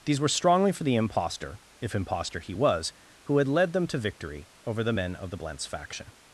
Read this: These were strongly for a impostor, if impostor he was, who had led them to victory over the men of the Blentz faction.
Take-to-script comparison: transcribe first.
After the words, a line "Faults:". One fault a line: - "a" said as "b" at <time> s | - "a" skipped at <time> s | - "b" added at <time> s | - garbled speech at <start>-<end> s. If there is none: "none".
These were strongly for the impostor, if impostor he was, who had led them to victory over the men of the Blentz faction.
Faults:
- "a" said as "the" at 0.8 s